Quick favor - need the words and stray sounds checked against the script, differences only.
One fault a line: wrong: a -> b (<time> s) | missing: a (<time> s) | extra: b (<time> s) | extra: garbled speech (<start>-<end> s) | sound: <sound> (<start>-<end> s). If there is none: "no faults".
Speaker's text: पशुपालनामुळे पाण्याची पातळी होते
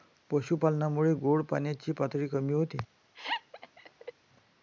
extra: गोड (1.2 s)
extra: कमी (2.3 s)
sound: laugh (3.1-4.1 s)